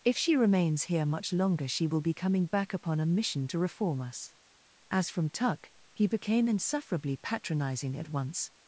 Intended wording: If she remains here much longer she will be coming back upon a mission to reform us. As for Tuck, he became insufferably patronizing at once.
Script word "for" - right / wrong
wrong